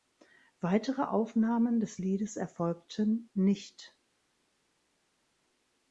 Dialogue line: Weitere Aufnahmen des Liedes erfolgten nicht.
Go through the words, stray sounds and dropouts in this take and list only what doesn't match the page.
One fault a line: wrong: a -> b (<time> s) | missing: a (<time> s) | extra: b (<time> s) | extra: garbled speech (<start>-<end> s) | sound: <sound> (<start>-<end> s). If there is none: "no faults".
no faults